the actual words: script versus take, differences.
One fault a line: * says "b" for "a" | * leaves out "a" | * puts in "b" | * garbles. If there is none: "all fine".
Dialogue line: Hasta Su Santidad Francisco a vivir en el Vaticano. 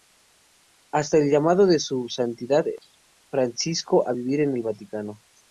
* puts in "el llamado de"